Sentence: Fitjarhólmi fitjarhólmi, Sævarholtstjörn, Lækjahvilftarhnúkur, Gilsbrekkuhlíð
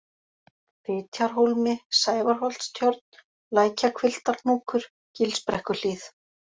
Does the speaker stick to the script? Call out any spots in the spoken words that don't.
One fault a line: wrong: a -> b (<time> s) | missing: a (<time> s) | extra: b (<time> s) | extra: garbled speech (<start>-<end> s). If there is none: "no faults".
missing: fitjarhólmi (1.8 s)